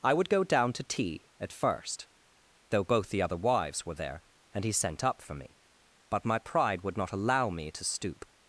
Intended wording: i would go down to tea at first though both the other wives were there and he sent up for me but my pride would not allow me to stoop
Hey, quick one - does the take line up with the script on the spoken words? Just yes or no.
yes